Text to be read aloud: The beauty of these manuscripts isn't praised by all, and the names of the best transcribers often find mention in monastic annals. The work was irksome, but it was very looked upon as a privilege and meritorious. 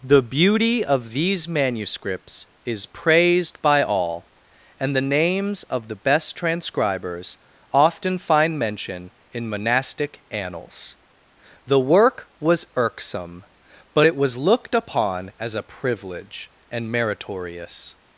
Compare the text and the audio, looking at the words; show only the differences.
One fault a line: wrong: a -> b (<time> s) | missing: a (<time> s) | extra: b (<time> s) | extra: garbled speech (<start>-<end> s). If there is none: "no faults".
wrong: isn't -> is (2.6 s)
missing: very (14.4 s)